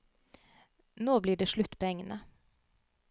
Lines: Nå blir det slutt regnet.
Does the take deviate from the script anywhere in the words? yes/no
no